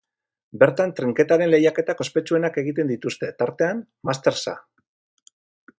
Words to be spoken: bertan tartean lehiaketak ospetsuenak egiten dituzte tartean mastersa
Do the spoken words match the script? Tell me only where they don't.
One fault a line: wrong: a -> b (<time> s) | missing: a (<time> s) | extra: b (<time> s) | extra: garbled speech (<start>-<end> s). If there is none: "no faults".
wrong: tartean -> trinketaren (1.0 s)